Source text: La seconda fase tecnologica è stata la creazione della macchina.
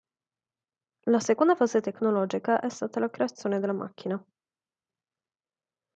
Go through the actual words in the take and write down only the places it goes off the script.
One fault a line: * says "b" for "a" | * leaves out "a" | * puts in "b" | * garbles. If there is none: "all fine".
all fine